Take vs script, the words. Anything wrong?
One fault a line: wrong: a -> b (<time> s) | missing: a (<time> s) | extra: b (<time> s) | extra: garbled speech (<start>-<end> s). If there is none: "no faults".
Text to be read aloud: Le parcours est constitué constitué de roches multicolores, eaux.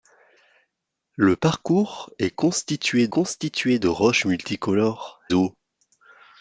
no faults